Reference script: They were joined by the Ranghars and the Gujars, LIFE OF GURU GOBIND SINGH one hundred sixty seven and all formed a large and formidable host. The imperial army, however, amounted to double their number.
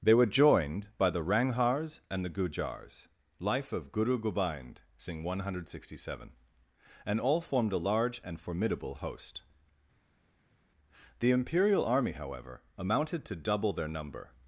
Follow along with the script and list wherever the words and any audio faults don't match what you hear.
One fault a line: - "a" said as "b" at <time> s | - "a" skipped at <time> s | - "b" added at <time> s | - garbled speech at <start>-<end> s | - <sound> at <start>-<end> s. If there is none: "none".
none